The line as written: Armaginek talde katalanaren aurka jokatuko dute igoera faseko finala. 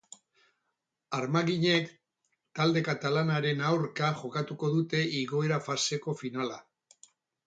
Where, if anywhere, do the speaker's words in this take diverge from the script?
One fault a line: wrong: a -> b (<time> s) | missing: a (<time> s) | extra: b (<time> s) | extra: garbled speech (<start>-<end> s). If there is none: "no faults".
no faults